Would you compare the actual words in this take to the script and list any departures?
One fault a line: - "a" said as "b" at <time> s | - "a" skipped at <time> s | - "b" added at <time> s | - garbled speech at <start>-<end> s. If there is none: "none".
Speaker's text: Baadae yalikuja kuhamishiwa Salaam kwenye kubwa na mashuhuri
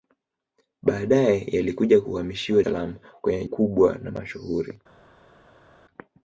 none